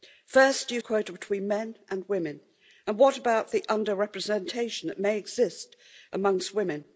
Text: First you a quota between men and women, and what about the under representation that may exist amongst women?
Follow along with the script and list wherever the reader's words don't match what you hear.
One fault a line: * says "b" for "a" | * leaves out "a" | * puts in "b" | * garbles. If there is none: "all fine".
all fine